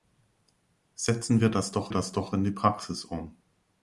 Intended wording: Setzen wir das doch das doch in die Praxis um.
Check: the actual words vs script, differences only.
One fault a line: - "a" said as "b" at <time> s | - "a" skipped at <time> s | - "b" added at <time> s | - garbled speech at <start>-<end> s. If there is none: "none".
none